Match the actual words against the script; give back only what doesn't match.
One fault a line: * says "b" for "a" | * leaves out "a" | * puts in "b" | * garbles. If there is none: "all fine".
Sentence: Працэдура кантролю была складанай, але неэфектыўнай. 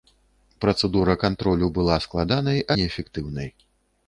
* leaves out "але"